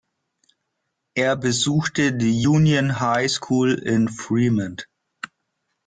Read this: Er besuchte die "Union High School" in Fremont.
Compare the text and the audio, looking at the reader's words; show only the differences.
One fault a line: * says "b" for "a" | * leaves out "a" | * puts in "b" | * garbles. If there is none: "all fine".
all fine